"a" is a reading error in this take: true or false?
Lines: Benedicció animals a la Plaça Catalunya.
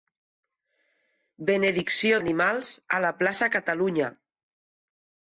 false